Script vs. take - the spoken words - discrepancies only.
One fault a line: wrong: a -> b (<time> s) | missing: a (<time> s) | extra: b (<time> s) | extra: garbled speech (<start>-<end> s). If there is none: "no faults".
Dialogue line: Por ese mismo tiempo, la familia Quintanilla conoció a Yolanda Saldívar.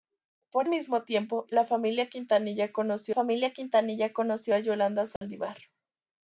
missing: ese (0.7 s)
extra: familia Quintanilla conoció (3.1 s)